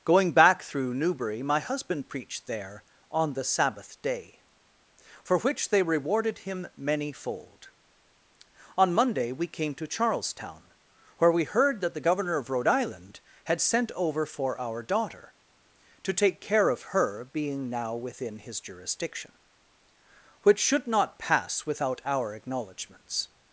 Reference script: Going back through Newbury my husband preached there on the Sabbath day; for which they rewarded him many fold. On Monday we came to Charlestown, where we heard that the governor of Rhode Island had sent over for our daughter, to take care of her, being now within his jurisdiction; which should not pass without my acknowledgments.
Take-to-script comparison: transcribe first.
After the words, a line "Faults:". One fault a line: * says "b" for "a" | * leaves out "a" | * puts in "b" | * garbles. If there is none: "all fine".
Going back through Newbury my husband preached there on the Sabbath day; for which they rewarded him many fold. On Monday we came to Charlestown, where we heard that the governor of Rhode Island had sent over for our daughter, to take care of her, being now within his jurisdiction; which should not pass without our acknowledgments.
Faults:
* says "our" for "my"